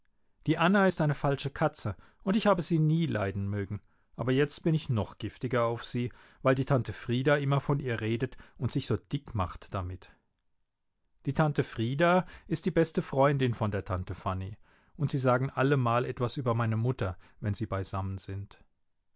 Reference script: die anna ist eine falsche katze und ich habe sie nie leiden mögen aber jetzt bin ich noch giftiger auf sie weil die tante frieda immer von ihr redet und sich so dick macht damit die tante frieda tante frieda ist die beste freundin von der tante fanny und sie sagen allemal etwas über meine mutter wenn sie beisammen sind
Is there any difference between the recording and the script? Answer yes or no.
yes